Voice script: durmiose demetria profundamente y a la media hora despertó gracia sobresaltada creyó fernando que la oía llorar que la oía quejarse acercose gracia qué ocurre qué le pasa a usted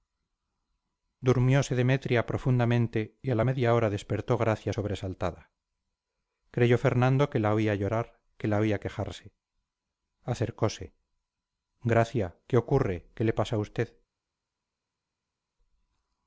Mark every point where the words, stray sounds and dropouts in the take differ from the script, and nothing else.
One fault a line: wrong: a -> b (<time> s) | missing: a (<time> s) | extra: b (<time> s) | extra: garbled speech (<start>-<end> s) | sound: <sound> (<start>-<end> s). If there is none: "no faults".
no faults